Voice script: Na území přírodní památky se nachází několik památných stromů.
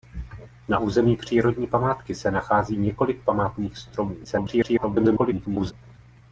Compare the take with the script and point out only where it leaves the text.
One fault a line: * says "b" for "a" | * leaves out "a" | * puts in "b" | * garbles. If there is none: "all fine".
* garbles